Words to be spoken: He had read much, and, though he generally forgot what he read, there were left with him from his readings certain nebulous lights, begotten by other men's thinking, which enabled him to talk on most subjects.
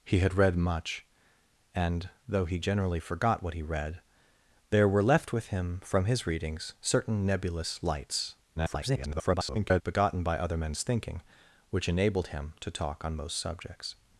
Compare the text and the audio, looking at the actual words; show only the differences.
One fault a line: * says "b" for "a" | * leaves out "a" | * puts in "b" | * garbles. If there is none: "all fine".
* garbles